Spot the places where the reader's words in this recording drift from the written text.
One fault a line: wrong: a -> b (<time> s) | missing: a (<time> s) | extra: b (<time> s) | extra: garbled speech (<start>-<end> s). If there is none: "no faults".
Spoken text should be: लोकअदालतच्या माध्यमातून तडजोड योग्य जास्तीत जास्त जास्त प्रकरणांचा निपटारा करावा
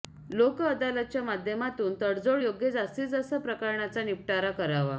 missing: जास्त (3.3 s)